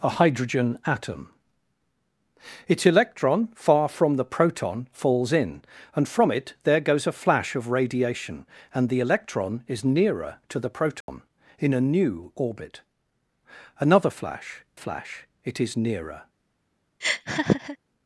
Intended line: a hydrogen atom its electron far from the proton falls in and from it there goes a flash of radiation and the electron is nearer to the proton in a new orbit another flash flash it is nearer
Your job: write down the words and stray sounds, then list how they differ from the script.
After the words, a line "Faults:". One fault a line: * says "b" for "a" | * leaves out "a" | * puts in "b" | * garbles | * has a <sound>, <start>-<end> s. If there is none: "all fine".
a hydrogen atom its electron far from the proton falls in and from it there goes a flash of radiation and the electron is nearer to the proton in a new orbit another flash flash it is nearer
Faults:
* has a dropout, 11.0-11.1 s
* has a laugh, 17.0-17.8 s